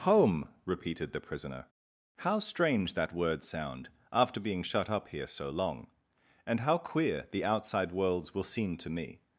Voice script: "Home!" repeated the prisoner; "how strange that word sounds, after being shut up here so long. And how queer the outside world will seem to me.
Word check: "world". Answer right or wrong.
wrong